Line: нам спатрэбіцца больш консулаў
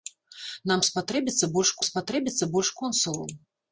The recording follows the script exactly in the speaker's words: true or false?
false